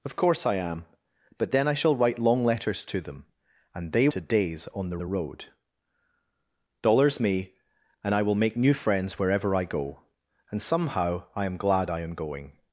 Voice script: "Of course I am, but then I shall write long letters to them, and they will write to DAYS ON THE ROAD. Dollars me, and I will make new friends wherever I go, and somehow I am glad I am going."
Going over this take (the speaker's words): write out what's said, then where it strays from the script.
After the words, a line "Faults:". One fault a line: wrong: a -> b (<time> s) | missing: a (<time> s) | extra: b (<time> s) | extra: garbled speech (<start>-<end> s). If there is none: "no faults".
"Of course I am, but then I shall write long letters to them, and they to DAYS ON THE THE ROAD. Dollars me, and I will make new friends wherever I go, and somehow I am glad I am going."
Faults:
missing: will write (4.1 s)
extra: THE (5.0 s)